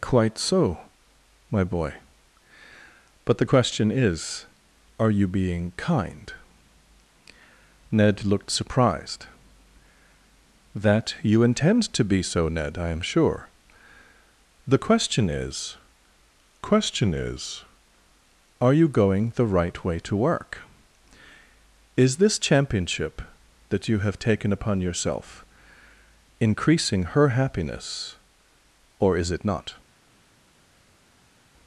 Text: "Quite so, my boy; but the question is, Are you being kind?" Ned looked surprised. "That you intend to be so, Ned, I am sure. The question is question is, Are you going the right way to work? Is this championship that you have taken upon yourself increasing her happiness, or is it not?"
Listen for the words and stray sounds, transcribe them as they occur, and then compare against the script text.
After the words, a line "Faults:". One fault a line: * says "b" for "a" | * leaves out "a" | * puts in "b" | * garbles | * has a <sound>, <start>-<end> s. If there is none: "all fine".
"Quite so, my boy; but the question is, Are you being kind?" Ned looked surprised. "That you intend to be so, Ned, I am sure. The question is question is, Are you going the right way to work? Is this championship that you have taken upon yourself increasing her happiness, or is it not?"
Faults:
all fine